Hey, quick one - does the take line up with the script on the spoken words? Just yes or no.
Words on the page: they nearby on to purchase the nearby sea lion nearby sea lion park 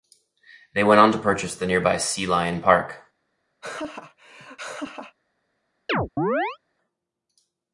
no